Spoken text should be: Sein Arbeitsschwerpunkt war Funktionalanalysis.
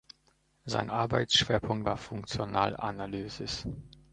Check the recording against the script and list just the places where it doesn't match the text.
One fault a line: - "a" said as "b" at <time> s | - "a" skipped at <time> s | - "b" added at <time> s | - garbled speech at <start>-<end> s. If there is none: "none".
none